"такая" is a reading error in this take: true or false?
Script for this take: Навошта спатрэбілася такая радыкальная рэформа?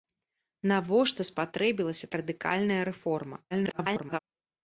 true